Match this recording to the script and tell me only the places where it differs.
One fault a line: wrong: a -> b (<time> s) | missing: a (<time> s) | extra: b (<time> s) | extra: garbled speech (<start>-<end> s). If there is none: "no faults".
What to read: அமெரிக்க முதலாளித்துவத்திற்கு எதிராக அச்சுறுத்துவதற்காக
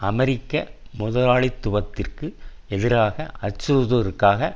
no faults